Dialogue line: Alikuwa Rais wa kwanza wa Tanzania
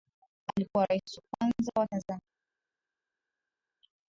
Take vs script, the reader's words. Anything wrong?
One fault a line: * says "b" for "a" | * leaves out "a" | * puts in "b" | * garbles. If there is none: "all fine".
all fine